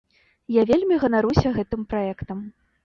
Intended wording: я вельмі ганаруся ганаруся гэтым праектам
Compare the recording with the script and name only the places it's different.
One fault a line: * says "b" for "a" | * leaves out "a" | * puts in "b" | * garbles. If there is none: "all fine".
* leaves out "ганаруся"